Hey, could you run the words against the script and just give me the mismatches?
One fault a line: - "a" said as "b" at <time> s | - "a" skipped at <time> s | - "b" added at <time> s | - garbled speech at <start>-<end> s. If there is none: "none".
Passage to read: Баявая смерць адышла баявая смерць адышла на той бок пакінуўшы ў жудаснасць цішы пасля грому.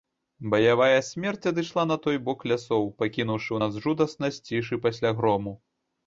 - "баявая смерць адышла" skipped at 1.8 s
- "лясоў" added at 2.5 s
- "нас" added at 3.6 s